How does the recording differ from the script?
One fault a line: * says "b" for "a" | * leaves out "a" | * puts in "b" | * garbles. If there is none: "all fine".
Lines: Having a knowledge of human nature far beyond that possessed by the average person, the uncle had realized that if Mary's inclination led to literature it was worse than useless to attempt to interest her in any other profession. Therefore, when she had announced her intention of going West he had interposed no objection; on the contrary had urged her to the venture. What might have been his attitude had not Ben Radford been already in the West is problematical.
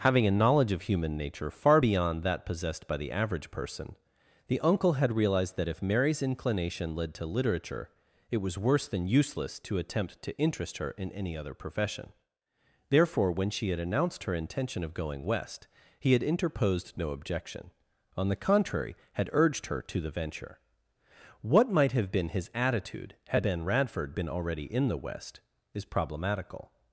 * leaves out "not"